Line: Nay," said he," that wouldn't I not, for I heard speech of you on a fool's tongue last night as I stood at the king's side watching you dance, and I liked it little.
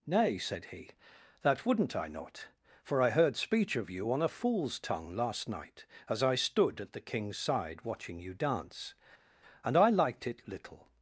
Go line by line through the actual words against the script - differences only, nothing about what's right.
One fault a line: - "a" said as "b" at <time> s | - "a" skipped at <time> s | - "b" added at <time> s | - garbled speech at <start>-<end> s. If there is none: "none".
none